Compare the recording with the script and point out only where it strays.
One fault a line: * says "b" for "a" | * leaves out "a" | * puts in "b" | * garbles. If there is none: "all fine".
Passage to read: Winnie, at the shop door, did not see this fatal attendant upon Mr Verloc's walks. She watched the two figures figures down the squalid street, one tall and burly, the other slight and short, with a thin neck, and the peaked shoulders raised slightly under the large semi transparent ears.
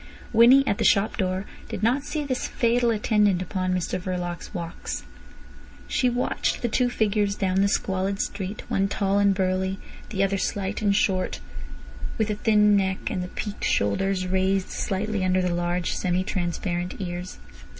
* leaves out "figures"